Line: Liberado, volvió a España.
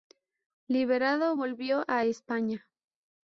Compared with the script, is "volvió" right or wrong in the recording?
right